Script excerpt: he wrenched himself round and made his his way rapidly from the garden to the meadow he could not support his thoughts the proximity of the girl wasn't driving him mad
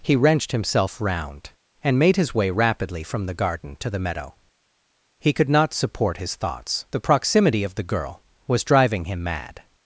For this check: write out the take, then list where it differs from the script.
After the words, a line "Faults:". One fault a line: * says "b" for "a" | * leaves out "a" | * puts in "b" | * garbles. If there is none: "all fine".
he wrenched himself round and made his way rapidly from the garden to the meadow he could not support his thoughts the proximity of the girl was driving him mad
Faults:
* leaves out "his"
* says "was" for "wasn't"